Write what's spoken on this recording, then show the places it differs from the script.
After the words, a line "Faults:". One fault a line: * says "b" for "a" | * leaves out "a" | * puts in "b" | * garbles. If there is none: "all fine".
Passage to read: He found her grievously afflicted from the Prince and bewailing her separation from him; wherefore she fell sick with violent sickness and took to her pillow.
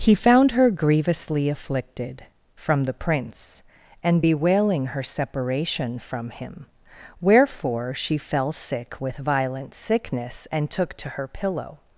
He found her grievously afflicted from the Prince and bewailing her separation from him; wherefore she fell sick with violent sickness and took to her pillow.
Faults:
all fine